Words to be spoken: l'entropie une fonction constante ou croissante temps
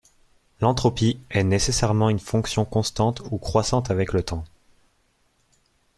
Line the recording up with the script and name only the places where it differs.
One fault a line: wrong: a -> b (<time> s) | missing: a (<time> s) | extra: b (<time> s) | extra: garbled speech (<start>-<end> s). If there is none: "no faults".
extra: est nécessairement (1.3 s)
extra: avec le (3.9 s)